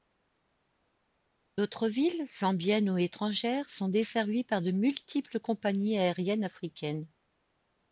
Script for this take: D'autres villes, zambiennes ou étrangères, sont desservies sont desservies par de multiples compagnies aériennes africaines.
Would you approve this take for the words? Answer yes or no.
no